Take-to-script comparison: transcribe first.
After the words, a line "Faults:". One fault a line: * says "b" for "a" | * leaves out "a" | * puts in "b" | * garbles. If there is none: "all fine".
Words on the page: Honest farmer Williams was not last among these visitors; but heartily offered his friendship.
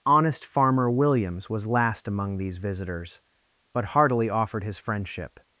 Honest farmer Williams was last among these visitors; but heartily offered his friendship.
Faults:
* leaves out "not"